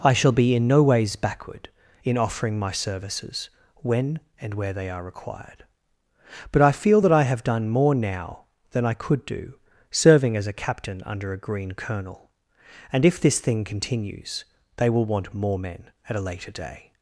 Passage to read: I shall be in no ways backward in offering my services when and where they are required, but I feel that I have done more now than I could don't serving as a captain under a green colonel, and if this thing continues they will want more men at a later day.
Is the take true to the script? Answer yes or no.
no